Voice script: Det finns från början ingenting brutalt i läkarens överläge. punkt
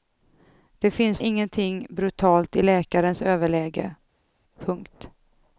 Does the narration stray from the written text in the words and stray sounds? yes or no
yes